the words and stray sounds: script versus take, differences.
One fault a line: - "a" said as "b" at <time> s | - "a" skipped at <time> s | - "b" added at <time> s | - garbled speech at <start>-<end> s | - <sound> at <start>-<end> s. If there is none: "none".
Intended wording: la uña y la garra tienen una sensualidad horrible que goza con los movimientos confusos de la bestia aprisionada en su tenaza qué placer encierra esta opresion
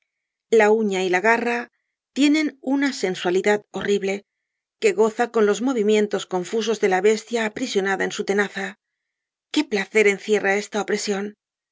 none